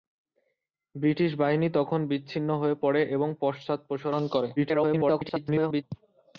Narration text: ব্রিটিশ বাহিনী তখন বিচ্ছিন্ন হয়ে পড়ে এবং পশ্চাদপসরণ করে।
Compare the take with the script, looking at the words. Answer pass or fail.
fail